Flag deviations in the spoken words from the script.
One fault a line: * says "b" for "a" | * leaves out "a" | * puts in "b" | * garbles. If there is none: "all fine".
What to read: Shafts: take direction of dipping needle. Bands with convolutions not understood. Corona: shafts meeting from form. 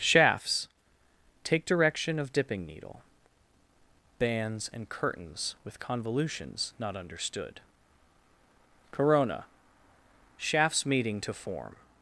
* puts in "and Curtains"
* says "to" for "from"